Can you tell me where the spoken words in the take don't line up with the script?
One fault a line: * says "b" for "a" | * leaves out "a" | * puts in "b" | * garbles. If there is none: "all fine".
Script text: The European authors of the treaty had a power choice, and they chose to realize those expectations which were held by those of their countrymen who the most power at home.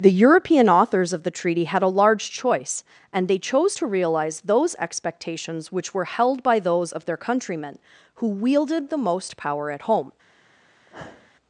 * says "large" for "power"
* puts in "wielded"